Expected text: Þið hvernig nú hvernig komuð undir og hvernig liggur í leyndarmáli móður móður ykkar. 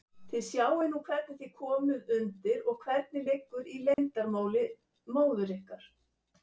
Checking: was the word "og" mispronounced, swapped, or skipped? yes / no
no